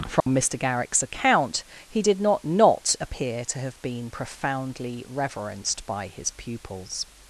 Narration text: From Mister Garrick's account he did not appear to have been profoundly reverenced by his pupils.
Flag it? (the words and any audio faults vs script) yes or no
yes